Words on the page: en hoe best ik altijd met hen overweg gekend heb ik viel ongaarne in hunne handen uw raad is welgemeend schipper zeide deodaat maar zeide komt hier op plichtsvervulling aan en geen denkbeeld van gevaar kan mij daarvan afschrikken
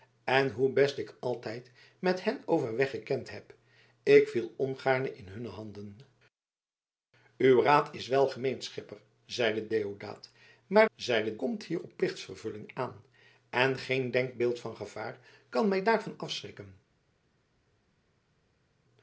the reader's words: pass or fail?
pass